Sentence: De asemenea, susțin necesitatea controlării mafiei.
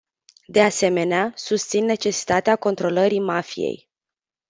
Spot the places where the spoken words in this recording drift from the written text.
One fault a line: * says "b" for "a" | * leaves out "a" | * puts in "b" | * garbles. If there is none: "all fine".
all fine